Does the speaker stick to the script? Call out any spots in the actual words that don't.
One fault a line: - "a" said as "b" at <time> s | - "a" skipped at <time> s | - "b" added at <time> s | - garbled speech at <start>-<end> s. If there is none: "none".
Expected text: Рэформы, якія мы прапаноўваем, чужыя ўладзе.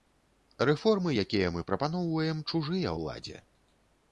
none